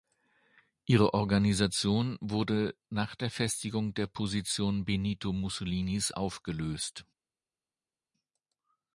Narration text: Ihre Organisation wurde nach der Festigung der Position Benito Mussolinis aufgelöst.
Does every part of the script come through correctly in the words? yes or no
yes